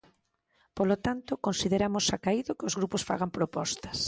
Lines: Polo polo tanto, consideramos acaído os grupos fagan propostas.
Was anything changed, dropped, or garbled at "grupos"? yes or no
no